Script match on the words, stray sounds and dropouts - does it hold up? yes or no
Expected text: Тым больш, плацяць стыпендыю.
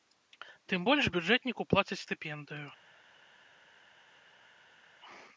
no